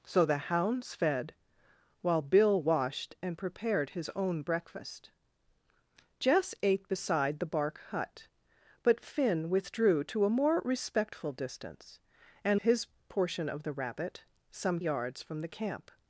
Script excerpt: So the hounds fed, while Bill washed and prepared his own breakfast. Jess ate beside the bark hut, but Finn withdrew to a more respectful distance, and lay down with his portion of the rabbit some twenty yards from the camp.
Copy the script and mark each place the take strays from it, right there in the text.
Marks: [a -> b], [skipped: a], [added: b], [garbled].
So the hounds fed, while Bill washed and prepared his own breakfast. Jess ate beside the bark hut, but Finn withdrew to a more respectful distance, and [skipped: lay down with] his portion of the rabbit some [skipped: twenty] yards from the camp.